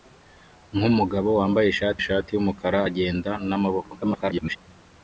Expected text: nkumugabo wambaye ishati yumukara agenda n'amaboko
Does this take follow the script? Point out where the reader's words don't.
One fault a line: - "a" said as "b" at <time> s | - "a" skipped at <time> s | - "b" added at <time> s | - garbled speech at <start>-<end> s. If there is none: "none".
- "ishati" added at 2.0 s
- garbled speech at 4.0-4.6 s